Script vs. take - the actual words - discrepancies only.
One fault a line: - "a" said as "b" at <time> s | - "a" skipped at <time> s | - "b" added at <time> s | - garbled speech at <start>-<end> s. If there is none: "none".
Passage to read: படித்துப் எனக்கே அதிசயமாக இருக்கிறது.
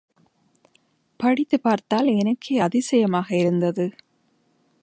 - "பார்த்தால்" added at 1.6 s
- "இருக்கிறது" said as "இருந்தது" at 3.4 s